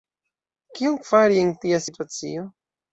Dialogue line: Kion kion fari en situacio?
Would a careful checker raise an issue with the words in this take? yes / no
yes